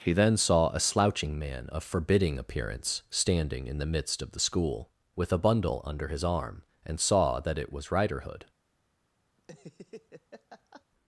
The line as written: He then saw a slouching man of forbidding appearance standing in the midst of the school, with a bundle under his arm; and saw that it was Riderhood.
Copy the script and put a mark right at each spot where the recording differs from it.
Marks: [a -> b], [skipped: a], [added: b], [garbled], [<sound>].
He then saw a slouching man of forbidding appearance standing in the midst of the school, with a bundle under his arm; and saw that it was Riderhood. [laugh]